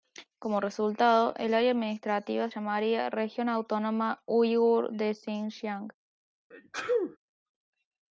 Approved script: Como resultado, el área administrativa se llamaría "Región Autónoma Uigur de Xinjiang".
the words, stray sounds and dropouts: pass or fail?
fail